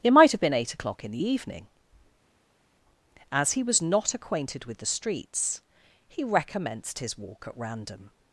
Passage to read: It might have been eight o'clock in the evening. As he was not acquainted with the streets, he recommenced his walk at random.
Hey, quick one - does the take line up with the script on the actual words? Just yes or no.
yes